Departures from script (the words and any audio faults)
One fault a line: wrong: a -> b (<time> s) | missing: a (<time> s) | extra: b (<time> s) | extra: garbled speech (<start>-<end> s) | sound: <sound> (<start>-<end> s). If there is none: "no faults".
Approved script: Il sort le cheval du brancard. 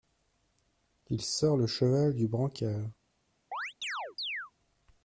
sound: chirp (3.5-4.5 s)